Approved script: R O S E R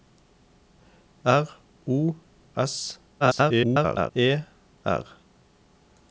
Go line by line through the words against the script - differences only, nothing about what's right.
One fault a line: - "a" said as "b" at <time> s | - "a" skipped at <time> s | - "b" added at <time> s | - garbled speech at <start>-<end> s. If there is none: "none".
- garbled speech at 3.2-4.1 s